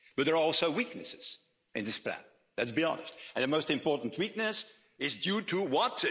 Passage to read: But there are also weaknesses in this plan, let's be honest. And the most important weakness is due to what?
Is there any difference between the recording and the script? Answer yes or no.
no